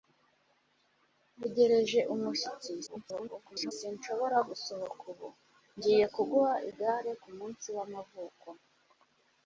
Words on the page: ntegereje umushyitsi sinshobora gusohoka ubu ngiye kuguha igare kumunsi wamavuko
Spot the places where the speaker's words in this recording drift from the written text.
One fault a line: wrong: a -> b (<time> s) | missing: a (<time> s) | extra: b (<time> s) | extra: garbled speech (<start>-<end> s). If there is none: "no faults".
extra: garbled speech (2.9-3.7 s)